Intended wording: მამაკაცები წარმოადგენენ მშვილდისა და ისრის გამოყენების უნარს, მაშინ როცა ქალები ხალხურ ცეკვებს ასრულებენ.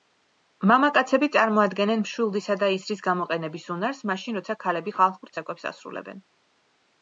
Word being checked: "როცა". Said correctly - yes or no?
yes